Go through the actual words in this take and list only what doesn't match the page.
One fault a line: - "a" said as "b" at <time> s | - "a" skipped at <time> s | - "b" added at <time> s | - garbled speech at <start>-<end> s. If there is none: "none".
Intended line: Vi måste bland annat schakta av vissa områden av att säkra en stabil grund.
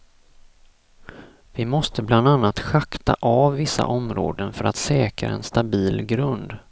- "av" said as "för" at 4.5 s